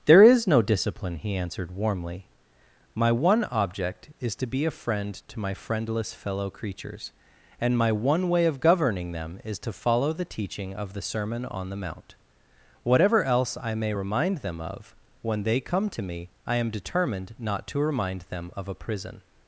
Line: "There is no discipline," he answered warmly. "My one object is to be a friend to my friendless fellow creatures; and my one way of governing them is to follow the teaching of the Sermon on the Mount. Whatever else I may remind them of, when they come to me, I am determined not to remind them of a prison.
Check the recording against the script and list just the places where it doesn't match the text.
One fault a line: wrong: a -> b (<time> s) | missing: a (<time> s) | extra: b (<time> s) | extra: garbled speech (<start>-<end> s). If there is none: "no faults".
no faults